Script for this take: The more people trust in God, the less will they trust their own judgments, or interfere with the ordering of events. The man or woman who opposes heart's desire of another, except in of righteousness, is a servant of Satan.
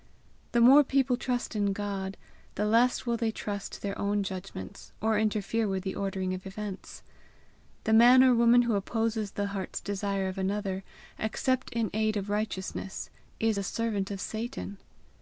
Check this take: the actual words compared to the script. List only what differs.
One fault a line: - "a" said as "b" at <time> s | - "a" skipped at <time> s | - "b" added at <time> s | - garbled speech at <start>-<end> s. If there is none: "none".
- "the" added at 9.3 s
- "aid" added at 11.9 s